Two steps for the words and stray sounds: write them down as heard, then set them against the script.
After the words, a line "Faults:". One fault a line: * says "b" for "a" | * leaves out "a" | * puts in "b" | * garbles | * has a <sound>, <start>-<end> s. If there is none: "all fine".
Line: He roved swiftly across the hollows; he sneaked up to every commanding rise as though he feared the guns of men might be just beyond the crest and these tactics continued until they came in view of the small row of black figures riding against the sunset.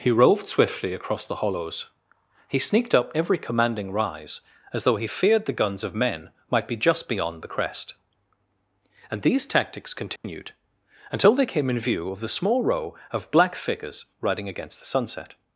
He roved swiftly across the hollows; he sneaked up every commanding rise as though he feared the guns of men might be just beyond the crest and these tactics continued until they came in view of the small row of black figures riding against the sunset.
Faults:
* leaves out "to"
* has a dropout, 10.2-10.2 s